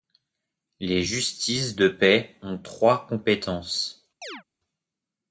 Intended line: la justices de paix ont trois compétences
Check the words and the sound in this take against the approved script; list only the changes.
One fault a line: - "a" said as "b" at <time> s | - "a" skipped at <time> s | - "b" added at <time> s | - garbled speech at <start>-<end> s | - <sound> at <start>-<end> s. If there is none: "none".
- "la" said as "les" at 0.8 s
- chirp at 4.2-4.4 s